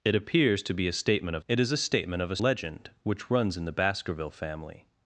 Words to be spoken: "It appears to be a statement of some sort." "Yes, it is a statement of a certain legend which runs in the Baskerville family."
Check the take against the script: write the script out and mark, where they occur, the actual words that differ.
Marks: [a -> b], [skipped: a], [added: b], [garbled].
"It appears to be a statement of [skipped: some sort." "Yes,] it is a statement of a [skipped: certain] legend which runs in the Baskerville family."